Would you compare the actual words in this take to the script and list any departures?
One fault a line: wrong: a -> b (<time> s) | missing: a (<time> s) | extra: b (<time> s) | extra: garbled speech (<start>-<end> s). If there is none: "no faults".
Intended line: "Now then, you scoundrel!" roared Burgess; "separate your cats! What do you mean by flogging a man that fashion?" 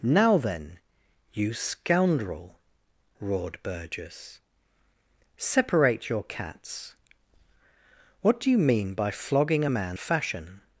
missing: that (10.0 s)